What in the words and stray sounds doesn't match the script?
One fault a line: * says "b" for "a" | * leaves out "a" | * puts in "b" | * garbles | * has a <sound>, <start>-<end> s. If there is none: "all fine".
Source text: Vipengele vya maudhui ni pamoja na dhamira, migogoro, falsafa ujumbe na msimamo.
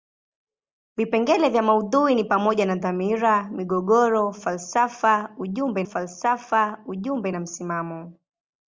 * puts in "falsafa ujumbe"